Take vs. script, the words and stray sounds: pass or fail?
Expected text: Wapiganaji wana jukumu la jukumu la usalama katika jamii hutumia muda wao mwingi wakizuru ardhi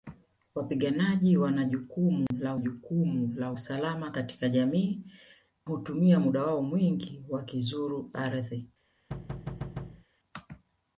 fail